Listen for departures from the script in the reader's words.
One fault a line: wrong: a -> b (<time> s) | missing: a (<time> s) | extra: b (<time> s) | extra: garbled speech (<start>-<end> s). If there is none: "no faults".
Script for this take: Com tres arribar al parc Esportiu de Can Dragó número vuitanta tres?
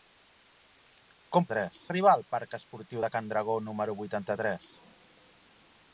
no faults